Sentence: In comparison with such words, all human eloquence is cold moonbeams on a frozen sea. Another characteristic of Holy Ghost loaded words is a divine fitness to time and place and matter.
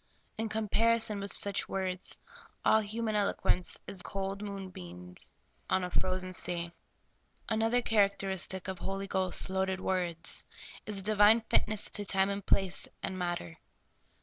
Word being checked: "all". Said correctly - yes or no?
yes